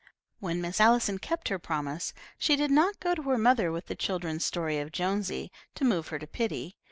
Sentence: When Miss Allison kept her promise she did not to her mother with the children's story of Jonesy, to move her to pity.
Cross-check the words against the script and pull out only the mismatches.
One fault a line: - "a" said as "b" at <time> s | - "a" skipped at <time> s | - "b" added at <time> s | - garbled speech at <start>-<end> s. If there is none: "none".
- "go" added at 3.0 s